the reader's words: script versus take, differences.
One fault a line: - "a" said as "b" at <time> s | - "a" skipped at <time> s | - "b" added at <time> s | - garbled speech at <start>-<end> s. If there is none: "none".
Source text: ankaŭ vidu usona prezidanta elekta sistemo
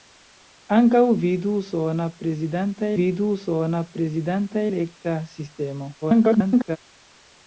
- "vidu usona prezidanta" added at 3.0 s
- garbled speech at 6.0-6.8 s